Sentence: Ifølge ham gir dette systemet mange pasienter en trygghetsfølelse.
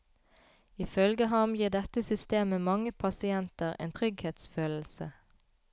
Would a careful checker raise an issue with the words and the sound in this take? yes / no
no